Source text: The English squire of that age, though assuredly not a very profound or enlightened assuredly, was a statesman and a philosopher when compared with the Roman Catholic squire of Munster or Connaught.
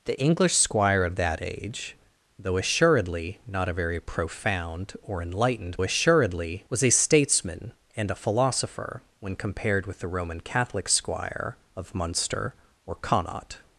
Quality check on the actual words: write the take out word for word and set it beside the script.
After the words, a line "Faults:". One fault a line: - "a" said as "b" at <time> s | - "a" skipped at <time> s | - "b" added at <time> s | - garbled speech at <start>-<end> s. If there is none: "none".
The English squire of that age, though assuredly not a very profound or enlightened assuredly, was a statesman and a philosopher when compared with the Roman Catholic squire of Munster or Connaught.
Faults:
none